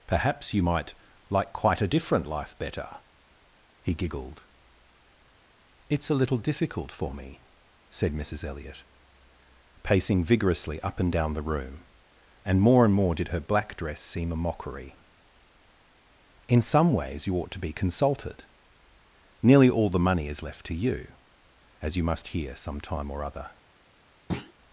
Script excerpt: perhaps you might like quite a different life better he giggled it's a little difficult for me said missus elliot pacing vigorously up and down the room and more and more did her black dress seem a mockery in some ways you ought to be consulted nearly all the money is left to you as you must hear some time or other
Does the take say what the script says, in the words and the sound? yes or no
no